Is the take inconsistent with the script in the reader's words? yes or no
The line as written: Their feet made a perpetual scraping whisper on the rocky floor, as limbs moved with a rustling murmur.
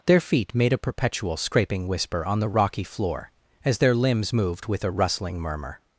yes